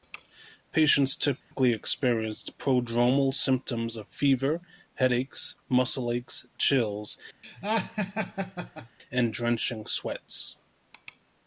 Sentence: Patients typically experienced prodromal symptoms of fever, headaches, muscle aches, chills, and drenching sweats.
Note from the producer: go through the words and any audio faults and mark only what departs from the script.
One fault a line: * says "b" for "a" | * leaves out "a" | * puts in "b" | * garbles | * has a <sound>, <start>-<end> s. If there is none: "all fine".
* has a dropout, 1.4-1.5 s
* has a laugh, 7.4-9.0 s